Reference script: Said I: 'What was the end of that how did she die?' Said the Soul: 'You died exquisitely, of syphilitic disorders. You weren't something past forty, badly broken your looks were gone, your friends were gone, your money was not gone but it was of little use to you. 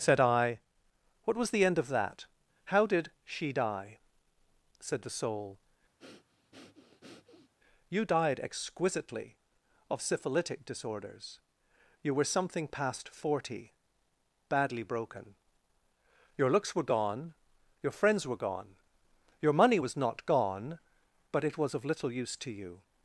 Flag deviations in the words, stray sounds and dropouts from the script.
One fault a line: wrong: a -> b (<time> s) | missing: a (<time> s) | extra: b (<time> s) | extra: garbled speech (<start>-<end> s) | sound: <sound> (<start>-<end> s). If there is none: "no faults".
sound: breath (6.0-7.5 s)
wrong: weren't -> were (12.1 s)